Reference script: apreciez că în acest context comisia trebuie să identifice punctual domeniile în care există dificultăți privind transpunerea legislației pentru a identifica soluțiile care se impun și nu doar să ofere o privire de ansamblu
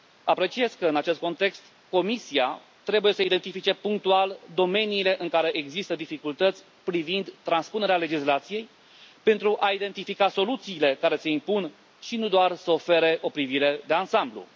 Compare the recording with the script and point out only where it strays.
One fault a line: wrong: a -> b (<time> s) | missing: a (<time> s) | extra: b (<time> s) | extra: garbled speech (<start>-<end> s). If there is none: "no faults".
no faults